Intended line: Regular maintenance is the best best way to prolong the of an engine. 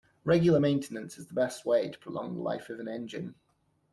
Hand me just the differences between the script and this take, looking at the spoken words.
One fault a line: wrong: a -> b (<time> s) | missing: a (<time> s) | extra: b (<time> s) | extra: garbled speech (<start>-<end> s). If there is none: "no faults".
missing: best (1.6 s)
extra: life (2.4 s)